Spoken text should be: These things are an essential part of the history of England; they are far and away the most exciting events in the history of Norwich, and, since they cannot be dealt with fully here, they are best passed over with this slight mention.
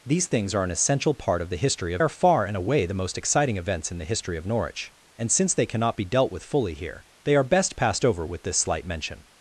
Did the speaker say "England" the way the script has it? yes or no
no